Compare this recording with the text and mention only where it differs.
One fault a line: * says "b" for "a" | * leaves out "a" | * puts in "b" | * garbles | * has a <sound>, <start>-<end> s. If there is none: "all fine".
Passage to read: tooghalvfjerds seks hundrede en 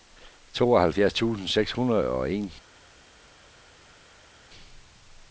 * puts in "tusind"
* puts in "og"